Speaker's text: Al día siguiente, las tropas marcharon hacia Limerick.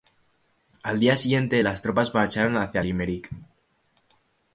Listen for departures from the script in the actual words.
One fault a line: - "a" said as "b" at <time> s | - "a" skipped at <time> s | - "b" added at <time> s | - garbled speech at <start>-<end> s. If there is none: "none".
none